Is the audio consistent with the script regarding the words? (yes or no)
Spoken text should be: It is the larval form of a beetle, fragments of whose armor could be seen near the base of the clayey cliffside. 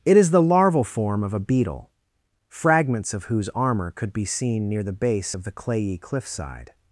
yes